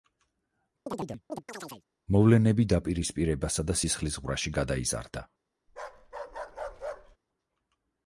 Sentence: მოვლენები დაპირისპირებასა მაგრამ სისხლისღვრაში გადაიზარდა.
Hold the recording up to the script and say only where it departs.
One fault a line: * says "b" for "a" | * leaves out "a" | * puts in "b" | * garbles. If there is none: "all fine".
* says "და" for "მაგრამ"